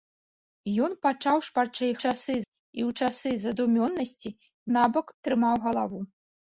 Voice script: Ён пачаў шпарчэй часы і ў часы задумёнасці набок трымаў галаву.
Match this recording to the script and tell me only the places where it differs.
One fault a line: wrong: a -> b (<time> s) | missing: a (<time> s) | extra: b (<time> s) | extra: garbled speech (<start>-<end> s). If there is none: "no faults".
no faults